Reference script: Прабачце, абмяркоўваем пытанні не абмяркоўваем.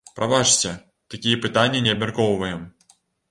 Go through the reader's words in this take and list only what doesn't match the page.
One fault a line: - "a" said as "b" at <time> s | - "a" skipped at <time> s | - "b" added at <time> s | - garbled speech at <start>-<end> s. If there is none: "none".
- "абмяркоўваем" said as "такія" at 1.1 s